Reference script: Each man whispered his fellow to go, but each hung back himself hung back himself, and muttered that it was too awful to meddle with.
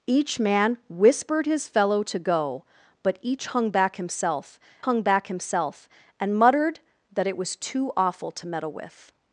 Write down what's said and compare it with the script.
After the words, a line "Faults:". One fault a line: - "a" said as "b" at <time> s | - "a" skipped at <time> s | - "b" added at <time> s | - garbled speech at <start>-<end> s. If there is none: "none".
Each man whispered his fellow to go, but each hung back himself hung back himself, and muttered that it was too awful to meddle with.
Faults:
none